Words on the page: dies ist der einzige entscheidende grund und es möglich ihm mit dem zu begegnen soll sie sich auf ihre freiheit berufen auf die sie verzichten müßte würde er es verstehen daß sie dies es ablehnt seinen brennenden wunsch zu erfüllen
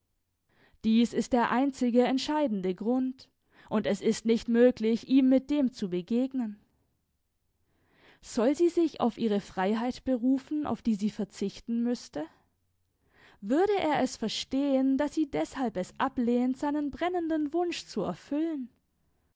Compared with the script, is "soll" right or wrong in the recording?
right